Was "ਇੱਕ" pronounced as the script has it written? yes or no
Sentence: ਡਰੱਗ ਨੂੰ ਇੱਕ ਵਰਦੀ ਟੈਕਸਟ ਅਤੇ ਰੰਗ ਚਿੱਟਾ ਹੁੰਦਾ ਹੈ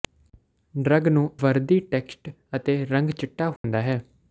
no